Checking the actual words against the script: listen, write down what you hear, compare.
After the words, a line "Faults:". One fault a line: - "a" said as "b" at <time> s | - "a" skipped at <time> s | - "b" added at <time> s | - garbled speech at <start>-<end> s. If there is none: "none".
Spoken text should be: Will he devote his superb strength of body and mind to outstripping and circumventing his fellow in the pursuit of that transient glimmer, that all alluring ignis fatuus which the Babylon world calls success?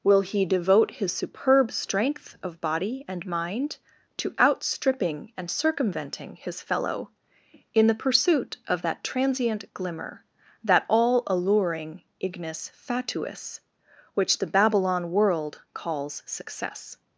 Will he devote his superb strength of body and mind to outstripping and circumventing his fellow in the pursuit of that transient glimmer, that all alluring ignis fatuus which the Babylon world calls success?
Faults:
none